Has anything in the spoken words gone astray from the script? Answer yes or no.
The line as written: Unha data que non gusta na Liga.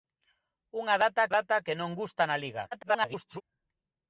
yes